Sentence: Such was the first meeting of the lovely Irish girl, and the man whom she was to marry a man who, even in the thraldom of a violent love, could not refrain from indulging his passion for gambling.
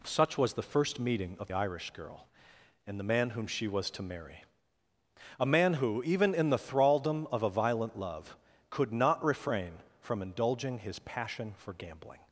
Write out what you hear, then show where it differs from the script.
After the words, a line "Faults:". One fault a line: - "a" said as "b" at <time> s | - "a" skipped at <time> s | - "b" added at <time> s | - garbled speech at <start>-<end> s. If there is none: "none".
Such was the first meeting of Irish girl, and the man whom she was to marry a man who, even in the thraldom of a violent love, could not refrain from indulging his passion for gambling.
Faults:
- "the lovely" skipped at 1.5 s